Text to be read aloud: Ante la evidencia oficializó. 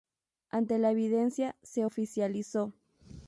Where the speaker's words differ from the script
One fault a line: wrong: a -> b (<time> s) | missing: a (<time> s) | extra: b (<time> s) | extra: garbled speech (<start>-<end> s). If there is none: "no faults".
extra: se (1.6 s)